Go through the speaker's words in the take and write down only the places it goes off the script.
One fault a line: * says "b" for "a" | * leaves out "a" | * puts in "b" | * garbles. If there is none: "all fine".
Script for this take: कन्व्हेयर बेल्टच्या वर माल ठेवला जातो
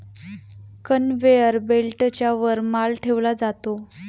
all fine